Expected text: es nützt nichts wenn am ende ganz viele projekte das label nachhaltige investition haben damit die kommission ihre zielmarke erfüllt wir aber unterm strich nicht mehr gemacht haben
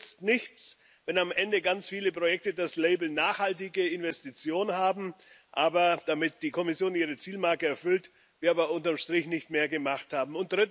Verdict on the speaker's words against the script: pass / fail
pass